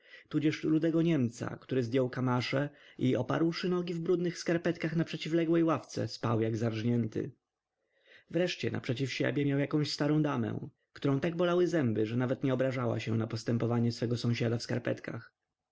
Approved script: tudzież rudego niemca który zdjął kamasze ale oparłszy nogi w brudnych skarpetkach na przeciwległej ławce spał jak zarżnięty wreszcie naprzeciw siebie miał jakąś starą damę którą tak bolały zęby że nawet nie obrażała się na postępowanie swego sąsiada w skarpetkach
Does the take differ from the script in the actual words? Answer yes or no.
yes